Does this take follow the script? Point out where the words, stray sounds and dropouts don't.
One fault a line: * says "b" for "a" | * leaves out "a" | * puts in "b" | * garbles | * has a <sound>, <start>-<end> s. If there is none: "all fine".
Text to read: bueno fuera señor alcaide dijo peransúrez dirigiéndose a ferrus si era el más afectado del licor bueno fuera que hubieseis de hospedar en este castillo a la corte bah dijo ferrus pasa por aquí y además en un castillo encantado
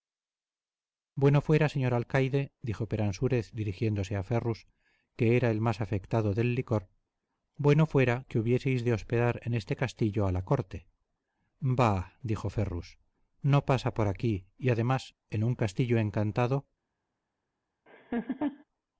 * says "que" for "si"
* puts in "no"
* has a laugh, 17.9-18.6 s